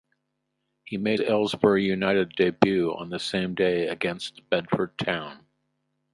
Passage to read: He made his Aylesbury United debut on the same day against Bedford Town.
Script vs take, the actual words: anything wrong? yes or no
yes